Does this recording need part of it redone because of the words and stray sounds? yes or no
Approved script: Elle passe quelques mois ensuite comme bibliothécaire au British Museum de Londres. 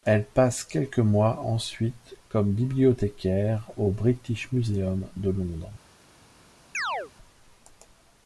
yes